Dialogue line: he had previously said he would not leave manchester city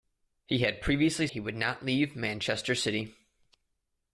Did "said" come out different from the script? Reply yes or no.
yes